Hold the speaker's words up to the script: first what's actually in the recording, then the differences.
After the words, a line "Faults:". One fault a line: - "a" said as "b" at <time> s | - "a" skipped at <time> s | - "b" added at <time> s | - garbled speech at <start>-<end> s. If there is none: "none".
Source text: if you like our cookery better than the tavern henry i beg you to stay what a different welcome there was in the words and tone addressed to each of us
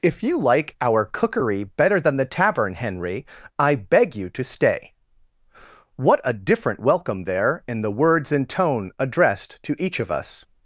if you like our cookery better than the tavern henry i beg you to stay what a different welcome there in the words and tone addressed to each of us
Faults:
- "was" skipped at 7.6 s